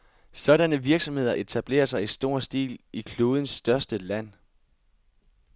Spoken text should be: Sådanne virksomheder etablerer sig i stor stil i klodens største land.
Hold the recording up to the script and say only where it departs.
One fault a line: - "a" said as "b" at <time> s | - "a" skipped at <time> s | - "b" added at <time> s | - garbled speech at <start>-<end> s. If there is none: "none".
none